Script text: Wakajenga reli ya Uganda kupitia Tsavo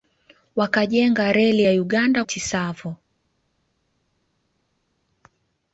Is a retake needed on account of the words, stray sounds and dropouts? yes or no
yes